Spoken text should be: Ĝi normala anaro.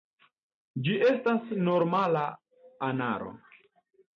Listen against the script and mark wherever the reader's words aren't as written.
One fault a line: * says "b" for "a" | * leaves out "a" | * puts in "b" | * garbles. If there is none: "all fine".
* puts in "estas"